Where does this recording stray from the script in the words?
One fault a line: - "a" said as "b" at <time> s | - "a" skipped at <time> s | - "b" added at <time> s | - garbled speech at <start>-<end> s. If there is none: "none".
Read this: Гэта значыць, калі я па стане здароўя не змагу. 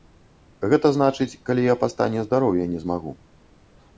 none